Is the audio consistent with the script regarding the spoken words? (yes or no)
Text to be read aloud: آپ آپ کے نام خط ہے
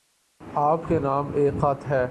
no